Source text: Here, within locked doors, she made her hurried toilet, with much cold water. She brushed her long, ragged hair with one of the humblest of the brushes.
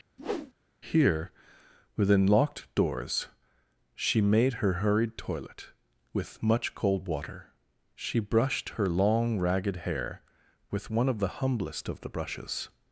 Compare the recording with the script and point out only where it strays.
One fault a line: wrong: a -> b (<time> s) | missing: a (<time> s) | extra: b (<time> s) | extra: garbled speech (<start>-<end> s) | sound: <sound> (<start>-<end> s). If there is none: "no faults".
sound: whoosh (0.2-0.5 s)